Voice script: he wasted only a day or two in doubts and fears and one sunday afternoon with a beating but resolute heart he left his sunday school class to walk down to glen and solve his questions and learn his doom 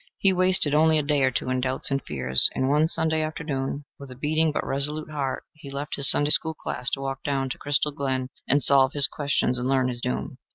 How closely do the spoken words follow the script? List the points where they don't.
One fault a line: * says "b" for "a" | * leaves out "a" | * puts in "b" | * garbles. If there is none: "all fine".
* puts in "crystal"